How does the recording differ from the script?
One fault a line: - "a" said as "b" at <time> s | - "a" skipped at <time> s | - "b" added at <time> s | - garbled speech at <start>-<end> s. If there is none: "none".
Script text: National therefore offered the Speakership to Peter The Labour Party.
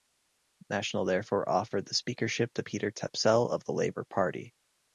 - "Tapsell of" added at 2.9 s